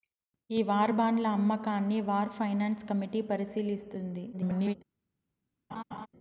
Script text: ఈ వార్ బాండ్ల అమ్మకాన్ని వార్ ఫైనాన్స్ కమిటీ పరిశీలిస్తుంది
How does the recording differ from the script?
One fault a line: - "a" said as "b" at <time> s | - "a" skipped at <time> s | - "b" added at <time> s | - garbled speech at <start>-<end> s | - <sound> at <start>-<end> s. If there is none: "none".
- garbled speech at 4.3-4.7 s
- laugh at 5.7-6.1 s